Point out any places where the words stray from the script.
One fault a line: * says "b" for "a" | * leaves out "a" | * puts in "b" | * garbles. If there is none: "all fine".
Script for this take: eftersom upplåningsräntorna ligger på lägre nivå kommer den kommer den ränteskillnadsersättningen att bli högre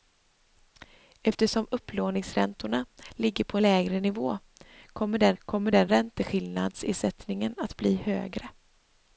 all fine